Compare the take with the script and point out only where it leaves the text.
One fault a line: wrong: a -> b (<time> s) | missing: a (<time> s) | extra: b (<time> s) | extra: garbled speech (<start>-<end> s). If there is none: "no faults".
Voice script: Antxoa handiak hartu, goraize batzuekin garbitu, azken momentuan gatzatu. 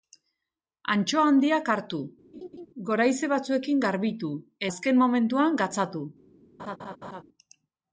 no faults